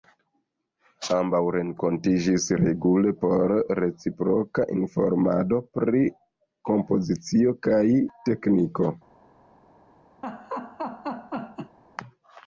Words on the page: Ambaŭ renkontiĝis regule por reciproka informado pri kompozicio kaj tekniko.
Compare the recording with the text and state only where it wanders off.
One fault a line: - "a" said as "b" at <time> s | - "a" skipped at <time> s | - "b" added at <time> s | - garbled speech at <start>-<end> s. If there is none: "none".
none